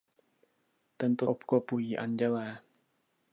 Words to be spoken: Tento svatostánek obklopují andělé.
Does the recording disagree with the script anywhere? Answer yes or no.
yes